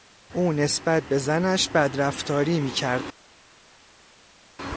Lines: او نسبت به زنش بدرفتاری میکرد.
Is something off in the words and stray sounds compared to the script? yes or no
no